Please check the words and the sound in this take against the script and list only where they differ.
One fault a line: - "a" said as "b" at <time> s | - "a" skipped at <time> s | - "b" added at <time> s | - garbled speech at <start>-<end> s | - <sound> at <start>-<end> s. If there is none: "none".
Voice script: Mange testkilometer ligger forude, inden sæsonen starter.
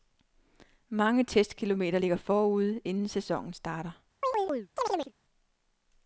- chirp at 4.2-5.1 s